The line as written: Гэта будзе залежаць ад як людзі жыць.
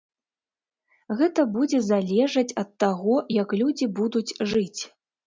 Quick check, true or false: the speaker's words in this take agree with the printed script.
false